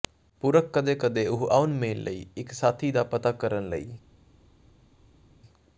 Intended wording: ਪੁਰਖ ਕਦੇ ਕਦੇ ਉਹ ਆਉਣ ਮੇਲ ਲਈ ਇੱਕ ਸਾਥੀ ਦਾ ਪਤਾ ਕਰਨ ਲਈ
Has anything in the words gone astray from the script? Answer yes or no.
no